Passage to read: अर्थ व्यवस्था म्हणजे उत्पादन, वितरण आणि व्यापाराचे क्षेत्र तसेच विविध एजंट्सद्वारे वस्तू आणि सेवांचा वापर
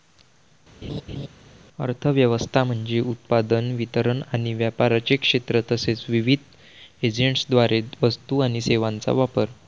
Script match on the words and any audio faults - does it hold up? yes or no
no